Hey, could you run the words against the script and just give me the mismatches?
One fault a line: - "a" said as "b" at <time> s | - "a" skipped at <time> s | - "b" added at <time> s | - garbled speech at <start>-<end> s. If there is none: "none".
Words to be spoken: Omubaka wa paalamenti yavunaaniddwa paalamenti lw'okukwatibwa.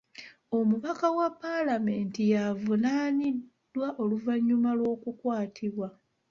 - "paalamenti" said as "oluvannyuma" at 4.0 s